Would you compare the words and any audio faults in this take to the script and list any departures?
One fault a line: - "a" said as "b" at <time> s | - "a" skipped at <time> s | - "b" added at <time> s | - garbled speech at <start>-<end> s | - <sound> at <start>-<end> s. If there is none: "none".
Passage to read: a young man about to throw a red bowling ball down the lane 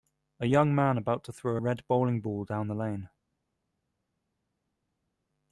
none